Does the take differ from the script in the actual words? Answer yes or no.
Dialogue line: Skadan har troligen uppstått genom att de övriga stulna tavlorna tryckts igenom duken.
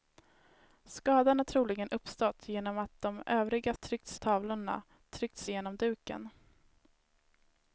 yes